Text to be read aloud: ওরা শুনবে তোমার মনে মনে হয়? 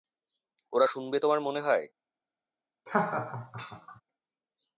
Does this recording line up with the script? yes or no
no